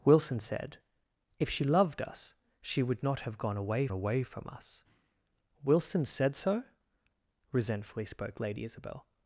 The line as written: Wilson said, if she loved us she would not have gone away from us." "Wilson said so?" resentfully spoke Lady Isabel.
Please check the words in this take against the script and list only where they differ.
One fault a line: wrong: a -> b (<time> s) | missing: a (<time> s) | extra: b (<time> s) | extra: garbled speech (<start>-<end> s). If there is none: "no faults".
extra: away (3.9 s)